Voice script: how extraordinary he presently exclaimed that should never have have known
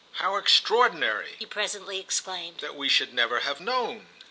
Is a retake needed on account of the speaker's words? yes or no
yes